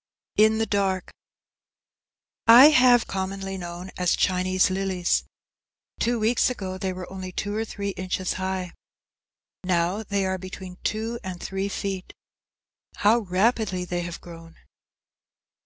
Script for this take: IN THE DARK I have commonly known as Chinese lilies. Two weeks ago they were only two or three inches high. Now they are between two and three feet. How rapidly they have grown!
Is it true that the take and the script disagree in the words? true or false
false